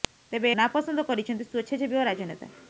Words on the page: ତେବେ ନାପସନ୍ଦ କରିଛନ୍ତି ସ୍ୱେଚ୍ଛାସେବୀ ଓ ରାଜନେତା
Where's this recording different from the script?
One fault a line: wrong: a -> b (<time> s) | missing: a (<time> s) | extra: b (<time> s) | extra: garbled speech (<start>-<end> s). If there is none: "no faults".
no faults